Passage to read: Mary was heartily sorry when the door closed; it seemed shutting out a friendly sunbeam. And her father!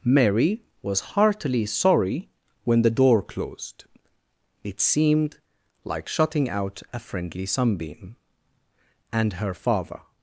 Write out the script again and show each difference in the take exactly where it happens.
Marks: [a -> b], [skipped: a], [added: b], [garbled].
Mary was heartily sorry when the door closed; it seemed [added: like] shutting out a friendly sunbeam. And her father!